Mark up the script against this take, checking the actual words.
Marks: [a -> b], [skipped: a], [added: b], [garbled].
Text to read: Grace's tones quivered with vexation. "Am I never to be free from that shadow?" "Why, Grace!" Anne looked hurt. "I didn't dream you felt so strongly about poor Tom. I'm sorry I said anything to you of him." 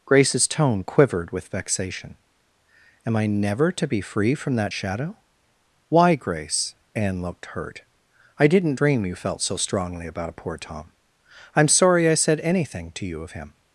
Grace's [tones -> tone] quivered with vexation. "Am I never to be free from that shadow?" "Why, Grace!" Anne looked hurt. "I didn't dream you felt so strongly about poor Tom. I'm sorry I said anything to you of him."